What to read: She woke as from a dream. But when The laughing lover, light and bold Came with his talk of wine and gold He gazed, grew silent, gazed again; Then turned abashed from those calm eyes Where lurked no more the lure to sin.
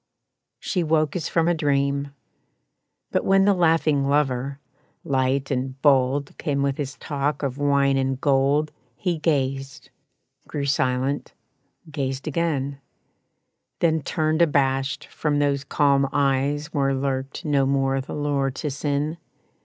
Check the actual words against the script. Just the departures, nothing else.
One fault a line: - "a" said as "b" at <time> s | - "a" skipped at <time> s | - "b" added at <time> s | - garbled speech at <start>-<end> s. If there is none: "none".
none